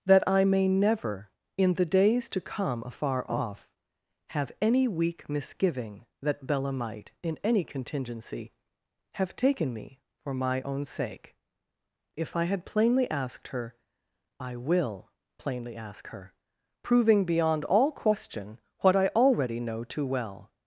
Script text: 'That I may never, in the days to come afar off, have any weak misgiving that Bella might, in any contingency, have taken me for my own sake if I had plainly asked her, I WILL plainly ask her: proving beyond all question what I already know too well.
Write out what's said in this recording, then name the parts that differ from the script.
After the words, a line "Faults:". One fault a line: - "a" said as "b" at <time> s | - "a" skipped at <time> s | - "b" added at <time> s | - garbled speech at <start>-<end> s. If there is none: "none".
'That I may never, in the days to come afar off, have any weak misgiving that Bella might, in any contingency, have taken me for my own sake if I had plainly asked her, I WILL plainly ask her: proving beyond all question what I already know too well.
Faults:
none